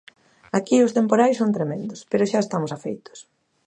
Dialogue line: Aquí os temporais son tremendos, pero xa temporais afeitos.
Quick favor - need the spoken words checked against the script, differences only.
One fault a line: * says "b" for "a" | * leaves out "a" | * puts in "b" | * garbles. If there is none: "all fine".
* says "estamos" for "temporais"